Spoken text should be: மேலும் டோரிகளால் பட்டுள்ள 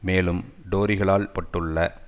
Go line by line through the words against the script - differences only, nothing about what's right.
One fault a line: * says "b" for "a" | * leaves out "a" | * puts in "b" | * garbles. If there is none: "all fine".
all fine